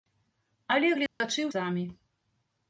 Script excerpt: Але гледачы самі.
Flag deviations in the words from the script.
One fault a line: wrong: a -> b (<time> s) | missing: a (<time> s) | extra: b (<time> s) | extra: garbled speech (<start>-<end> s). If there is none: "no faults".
no faults